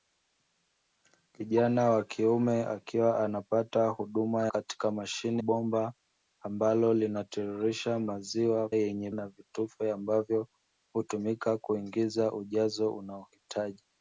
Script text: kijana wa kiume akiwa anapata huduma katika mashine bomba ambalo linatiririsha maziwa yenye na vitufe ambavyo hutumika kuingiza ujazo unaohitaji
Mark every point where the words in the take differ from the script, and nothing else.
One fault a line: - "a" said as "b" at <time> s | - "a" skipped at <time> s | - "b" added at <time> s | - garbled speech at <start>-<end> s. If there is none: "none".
none